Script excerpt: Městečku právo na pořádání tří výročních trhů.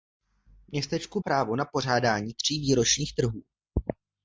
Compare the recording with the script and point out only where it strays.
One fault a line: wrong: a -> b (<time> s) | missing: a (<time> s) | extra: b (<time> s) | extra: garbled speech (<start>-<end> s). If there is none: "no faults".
no faults